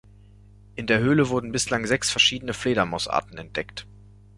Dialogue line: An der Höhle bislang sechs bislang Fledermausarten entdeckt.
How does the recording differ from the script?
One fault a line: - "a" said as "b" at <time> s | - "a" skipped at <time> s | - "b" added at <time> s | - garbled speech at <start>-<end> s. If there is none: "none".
- "An" said as "In" at 0.7 s
- "wurden" added at 1.3 s
- "bislang" said as "verschiedene" at 2.1 s